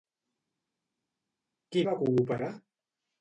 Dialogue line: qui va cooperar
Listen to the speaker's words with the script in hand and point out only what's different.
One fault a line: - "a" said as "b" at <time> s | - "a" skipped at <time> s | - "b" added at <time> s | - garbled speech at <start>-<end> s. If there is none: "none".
none